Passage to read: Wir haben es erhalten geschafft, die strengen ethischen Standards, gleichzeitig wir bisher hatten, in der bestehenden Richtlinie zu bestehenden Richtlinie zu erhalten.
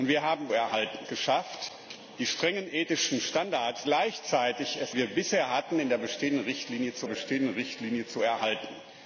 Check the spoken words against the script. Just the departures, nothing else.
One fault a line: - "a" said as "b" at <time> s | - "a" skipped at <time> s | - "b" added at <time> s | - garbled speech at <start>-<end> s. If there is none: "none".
none